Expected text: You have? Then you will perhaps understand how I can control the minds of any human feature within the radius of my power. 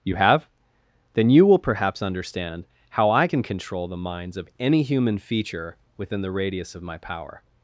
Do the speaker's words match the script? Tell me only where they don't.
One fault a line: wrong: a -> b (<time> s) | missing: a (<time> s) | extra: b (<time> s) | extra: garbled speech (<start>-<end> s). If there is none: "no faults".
no faults